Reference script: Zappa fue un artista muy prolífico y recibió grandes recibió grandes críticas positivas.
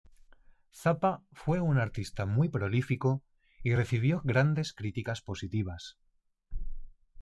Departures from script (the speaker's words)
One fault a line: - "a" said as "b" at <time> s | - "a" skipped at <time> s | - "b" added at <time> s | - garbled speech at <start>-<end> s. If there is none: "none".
- "recibió grandes" skipped at 4.7 s